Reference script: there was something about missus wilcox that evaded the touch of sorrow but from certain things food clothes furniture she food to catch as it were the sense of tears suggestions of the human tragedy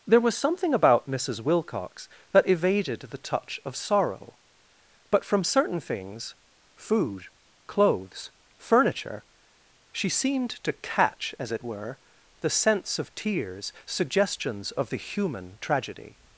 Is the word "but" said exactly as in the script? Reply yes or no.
yes